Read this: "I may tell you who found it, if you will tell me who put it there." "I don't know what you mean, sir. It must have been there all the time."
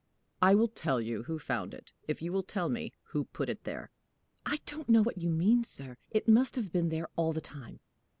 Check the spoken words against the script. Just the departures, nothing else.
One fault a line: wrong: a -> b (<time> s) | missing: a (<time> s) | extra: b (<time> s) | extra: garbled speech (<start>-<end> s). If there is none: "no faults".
wrong: may -> will (0.6 s)